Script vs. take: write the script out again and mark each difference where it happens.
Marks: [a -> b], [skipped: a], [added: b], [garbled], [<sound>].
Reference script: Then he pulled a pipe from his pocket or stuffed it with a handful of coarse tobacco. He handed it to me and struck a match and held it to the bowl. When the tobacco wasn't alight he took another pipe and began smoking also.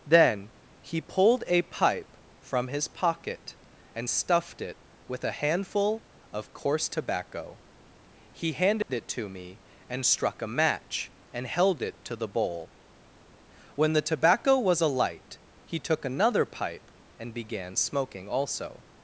Then he pulled a pipe from his pocket [or -> and] stuffed it with a handful of coarse tobacco. He handed [dropout] it to me and struck a match and held it to the bowl. When the tobacco [wasn't -> was] alight he took another pipe and began smoking also.